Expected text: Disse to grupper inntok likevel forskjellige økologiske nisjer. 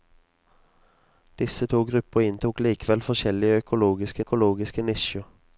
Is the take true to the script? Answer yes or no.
no